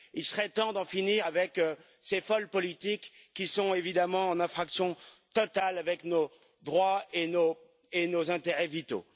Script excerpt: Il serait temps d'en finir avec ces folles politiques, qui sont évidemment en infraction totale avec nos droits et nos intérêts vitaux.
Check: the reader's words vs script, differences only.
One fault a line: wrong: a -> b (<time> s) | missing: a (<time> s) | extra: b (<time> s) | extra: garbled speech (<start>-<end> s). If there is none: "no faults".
no faults